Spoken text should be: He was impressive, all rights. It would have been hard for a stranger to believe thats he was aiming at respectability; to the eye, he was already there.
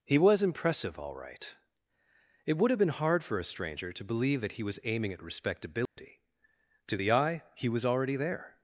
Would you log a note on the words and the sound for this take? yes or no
yes